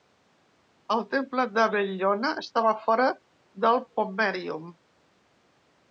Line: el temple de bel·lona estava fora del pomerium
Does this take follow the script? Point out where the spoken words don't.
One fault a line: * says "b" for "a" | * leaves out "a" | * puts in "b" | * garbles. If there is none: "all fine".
all fine